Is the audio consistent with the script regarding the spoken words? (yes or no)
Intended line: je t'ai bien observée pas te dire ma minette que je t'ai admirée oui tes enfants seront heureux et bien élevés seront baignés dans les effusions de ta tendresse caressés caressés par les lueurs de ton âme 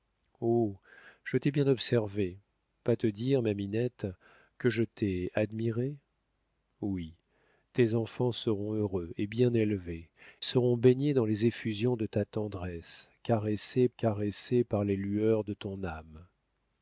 yes